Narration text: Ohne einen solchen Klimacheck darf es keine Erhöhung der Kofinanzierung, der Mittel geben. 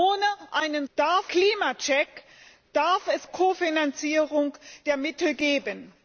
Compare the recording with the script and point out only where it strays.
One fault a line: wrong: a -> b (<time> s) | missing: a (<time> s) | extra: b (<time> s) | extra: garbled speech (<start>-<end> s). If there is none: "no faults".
wrong: solchen -> darf (0.9 s)
missing: keine Erhöhung der (3.3 s)